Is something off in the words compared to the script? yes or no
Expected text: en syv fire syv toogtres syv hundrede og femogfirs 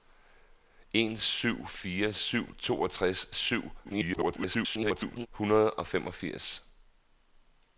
yes